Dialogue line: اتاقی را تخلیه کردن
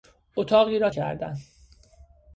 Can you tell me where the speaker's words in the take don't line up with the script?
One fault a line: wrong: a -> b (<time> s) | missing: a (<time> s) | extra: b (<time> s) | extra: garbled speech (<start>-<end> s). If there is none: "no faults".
missing: تخلیه (0.9 s)